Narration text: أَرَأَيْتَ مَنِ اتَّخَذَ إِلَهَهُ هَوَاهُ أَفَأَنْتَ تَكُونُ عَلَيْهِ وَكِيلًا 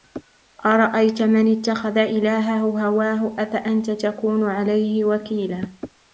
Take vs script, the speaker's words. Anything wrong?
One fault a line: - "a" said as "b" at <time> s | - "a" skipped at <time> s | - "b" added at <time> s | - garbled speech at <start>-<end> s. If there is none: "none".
none